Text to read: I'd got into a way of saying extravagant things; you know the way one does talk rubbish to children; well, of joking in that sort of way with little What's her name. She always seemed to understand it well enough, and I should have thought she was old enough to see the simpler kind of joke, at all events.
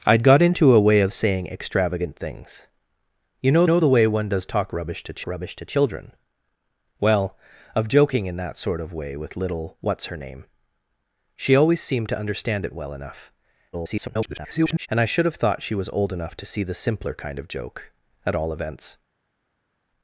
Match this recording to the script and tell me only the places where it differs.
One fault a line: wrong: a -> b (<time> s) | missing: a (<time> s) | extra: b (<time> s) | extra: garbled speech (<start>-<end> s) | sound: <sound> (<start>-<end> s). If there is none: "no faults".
extra: know (3.6 s)
extra: rubbish to (5.3 s)
extra: garbled speech (13.7-14.9 s)